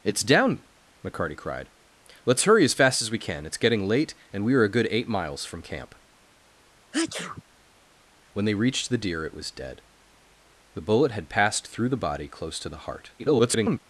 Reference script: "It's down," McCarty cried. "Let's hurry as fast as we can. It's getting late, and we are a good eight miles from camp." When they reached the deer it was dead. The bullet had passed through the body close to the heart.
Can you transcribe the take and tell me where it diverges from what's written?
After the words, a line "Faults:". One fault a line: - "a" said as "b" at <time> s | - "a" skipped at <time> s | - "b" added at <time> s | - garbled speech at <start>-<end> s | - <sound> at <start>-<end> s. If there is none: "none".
"It's down," McCarty cried. "Let's hurry as fast as we can. It's getting late, and we are a good eight miles from camp." When they reached the deer it was dead. The bullet had passed through the body close to the heart. [garbled]
Faults:
- sneeze at 6.9-7.4 s
- garbled speech at 13.2-13.8 s